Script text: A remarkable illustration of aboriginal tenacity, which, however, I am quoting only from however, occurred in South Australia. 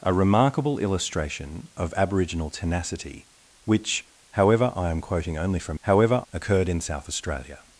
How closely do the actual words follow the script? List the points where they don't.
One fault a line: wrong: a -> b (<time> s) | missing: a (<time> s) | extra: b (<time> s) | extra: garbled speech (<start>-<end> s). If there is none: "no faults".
no faults